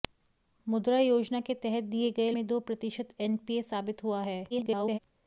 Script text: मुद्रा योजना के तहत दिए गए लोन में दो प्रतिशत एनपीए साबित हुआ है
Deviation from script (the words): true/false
true